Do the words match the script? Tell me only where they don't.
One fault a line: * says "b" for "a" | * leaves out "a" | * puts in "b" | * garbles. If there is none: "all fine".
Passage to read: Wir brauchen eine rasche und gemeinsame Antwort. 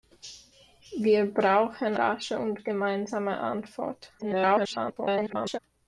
* leaves out "eine"
* garbles